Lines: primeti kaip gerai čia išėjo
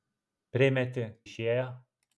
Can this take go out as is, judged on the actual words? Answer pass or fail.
fail